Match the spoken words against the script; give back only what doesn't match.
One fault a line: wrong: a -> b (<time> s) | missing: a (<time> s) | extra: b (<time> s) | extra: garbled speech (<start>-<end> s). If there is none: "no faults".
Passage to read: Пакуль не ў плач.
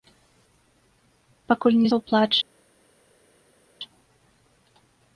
no faults